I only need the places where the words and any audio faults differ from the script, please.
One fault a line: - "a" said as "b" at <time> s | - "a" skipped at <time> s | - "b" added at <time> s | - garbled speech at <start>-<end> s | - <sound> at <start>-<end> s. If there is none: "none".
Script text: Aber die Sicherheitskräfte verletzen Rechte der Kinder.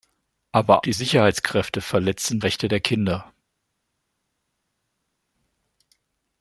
none